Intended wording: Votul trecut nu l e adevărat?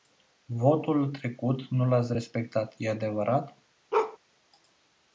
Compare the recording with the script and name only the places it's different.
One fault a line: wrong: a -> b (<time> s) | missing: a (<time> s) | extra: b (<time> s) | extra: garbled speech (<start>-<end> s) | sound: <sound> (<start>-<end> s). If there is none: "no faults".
extra: ați respectat (1.9 s)
sound: bark (3.9-4.2 s)